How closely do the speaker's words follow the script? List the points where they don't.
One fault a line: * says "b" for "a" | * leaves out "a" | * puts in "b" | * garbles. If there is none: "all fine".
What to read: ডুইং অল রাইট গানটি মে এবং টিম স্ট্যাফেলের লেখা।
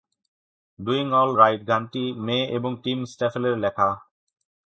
all fine